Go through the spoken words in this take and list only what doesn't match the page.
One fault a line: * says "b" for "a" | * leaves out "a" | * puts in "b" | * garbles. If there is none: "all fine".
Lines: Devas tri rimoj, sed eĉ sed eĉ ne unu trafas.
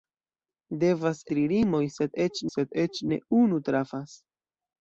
all fine